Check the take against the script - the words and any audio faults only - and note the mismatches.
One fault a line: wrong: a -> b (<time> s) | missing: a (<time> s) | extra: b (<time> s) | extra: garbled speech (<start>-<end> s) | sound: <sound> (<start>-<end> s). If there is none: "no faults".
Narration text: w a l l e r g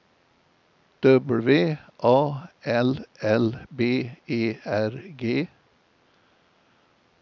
extra: b (3.7 s)